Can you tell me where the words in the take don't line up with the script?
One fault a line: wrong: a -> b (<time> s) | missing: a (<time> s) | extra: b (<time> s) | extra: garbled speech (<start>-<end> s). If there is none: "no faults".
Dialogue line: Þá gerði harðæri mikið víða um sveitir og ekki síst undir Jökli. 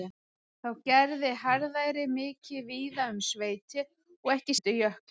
missing: síst (4.6 s)